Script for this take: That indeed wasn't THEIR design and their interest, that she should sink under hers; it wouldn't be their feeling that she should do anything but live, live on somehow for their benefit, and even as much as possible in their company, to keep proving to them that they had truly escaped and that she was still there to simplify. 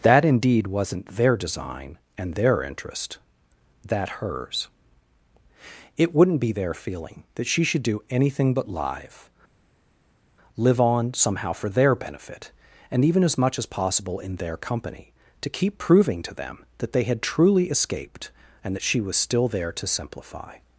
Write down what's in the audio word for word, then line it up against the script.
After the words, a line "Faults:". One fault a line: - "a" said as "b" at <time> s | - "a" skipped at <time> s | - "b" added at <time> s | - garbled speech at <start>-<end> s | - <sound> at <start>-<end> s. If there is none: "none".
That indeed wasn't THEIR design and their interest, that hers; it wouldn't be their feeling that she should do anything but live, live on somehow for their benefit, and even as much as possible in their company, to keep proving to them that they had truly escaped and that she was still there to simplify.
Faults:
- "she should sink under" skipped at 4.2 s